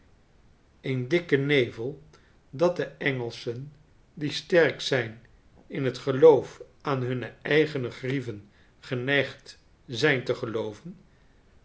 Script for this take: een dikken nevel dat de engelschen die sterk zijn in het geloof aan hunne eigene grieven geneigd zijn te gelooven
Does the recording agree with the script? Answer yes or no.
yes